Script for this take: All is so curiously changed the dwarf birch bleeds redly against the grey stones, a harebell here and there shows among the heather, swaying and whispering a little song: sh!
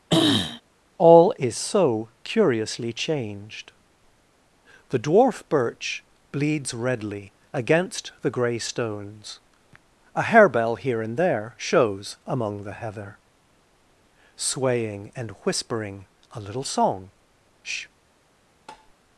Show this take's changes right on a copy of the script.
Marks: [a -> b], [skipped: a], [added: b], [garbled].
All is so curiously changed the dwarf birch bleeds redly against the grey stones, a harebell here and there shows among the heather, swaying and whispering a little song: sh!